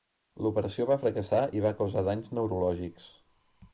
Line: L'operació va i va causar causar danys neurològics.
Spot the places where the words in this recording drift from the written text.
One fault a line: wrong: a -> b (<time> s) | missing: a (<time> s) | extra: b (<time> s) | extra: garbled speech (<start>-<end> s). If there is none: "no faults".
extra: fracassar (1.0 s)
missing: causar (2.0 s)